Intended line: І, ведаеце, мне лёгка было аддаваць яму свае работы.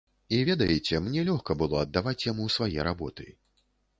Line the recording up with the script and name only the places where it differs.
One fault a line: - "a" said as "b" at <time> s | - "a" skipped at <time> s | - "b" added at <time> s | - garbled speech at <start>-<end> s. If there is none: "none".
none